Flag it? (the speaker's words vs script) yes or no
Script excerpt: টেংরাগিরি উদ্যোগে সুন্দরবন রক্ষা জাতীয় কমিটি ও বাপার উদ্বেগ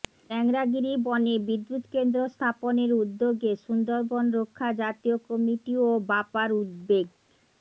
yes